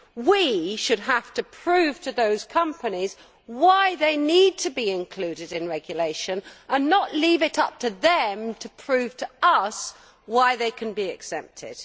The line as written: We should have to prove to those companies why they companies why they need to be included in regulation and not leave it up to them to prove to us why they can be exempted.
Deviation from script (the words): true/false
true